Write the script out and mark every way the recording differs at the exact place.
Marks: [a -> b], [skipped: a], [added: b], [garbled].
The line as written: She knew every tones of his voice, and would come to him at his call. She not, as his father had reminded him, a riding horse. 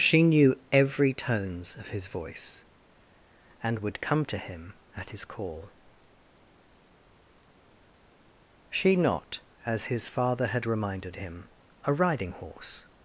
She knew every tones of his voice, and would come to him at his call. She not, as his father had reminded him, a riding horse.